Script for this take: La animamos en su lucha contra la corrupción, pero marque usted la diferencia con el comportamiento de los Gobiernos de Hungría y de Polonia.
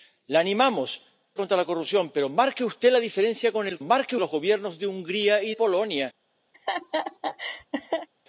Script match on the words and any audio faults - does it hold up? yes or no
no